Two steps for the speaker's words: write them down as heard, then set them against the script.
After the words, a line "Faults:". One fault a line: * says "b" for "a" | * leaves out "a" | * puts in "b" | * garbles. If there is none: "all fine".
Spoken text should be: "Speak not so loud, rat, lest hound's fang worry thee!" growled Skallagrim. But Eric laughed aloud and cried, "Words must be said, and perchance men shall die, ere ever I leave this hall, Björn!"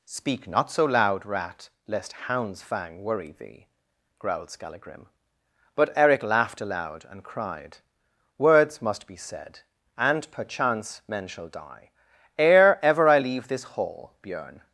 "Speak not so loud, rat, lest hound's fang worry thee!" growled Skallagrim. But Eric laughed aloud and cried, "Words must be said, and perchance men shall die, ere ever I leave this hall, Björn!"
Faults:
all fine